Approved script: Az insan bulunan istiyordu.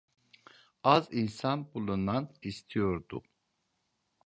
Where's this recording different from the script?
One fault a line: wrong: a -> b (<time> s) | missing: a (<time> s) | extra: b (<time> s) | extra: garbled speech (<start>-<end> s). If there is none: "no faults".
no faults